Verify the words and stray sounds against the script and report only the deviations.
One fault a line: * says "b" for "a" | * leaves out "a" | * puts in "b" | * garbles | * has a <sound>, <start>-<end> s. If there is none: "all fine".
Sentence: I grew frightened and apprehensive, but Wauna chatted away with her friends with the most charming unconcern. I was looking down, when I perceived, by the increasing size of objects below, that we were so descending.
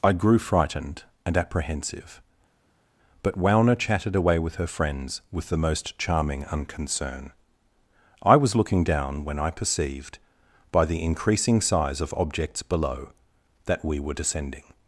* leaves out "so"